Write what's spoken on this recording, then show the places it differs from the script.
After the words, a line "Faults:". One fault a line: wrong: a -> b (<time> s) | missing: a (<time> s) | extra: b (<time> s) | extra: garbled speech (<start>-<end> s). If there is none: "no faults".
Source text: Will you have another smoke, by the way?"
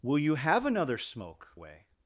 Will you have another smoke, way?"
Faults:
missing: by the (1.5 s)